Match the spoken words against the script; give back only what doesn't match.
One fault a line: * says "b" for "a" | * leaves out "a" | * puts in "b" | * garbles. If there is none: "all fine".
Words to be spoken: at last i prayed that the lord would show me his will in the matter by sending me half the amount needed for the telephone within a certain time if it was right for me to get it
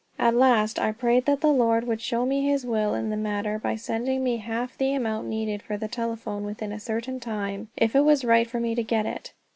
all fine